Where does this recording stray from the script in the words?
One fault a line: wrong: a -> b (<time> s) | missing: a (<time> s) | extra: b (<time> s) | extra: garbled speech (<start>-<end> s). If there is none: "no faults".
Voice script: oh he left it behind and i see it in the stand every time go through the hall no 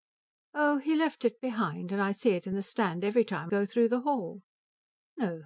no faults